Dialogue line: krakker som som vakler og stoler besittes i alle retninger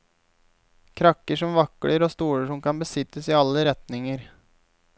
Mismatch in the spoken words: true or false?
true